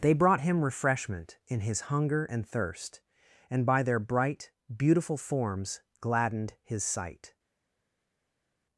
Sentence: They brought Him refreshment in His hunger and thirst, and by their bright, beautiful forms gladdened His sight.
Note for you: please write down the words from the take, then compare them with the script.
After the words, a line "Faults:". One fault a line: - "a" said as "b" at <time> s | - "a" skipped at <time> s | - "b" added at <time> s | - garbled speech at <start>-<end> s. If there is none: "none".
They brought Him refreshment in His hunger and thirst, and by their bright, beautiful forms gladdened His sight.
Faults:
none